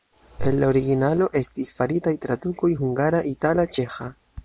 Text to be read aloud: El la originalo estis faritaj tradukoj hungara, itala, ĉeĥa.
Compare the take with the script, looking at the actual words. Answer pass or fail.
pass